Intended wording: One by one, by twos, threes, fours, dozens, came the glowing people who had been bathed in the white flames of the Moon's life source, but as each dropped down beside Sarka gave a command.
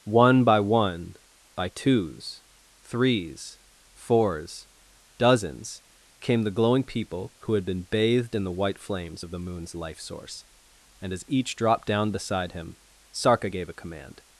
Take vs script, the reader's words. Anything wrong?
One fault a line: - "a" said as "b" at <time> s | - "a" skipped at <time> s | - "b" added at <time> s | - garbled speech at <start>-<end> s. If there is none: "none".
- "but" said as "and" at 11.0 s
- "him" added at 12.5 s